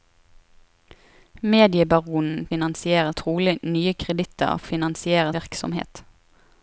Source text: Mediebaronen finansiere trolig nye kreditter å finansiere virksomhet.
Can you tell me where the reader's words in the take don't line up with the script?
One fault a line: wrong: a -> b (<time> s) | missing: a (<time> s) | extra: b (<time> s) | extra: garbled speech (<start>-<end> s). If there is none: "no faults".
no faults